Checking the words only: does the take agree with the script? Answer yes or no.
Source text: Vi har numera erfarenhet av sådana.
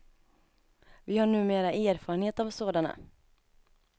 yes